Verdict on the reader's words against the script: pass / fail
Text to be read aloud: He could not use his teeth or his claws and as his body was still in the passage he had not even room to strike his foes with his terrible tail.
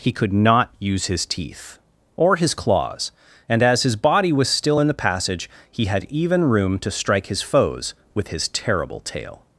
fail